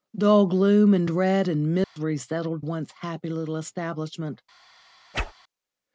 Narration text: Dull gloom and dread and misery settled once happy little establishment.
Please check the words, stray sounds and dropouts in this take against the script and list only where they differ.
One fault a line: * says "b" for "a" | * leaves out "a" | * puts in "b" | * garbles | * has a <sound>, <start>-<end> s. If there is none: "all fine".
* has a dropout, 1.8-2.0 s
* has a whoosh, 5.1-5.3 s